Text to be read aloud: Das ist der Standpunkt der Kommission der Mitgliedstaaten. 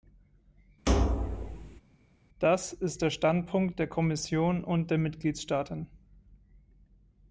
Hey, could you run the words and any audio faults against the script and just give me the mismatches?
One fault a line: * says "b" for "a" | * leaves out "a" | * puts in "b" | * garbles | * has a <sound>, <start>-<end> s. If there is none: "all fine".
* has a thud, 0.9-1.8 s
* puts in "und"